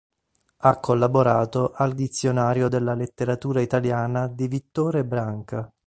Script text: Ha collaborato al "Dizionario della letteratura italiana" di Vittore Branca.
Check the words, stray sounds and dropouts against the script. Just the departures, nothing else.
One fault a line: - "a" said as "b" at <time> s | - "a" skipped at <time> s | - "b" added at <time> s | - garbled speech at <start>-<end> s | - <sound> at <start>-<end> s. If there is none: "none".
none